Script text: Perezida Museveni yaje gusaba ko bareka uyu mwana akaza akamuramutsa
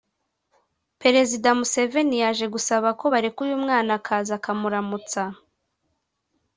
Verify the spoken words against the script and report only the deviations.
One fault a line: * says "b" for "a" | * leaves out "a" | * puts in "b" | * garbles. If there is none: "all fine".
all fine